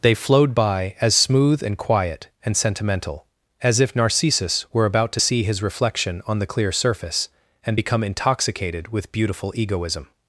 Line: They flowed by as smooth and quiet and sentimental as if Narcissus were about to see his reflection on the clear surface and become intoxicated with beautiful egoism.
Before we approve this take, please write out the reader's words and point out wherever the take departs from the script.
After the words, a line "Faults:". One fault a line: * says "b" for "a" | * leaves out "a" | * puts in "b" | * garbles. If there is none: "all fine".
They flowed by as smooth and quiet and sentimental as if Narcissus were about to see his reflection on the clear surface and become intoxicated with beautiful egoism.
Faults:
all fine